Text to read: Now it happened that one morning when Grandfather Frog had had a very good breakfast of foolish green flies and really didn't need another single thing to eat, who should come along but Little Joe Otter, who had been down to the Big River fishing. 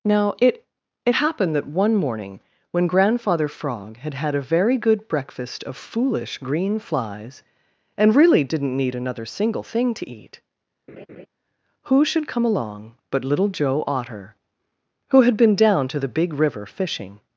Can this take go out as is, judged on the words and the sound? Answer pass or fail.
fail